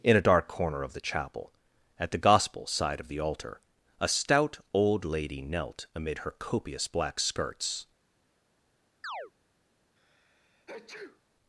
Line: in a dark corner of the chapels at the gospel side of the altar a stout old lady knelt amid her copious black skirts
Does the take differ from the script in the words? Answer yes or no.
yes